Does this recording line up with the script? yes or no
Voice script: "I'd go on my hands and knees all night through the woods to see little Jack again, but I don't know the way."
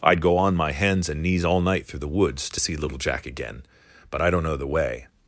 yes